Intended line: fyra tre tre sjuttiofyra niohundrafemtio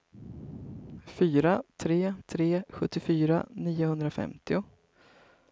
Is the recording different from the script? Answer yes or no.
no